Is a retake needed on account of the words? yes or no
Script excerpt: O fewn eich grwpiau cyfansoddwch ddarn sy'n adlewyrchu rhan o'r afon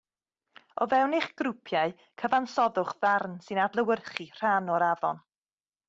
no